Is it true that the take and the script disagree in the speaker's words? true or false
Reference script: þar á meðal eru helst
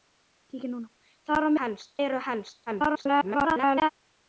true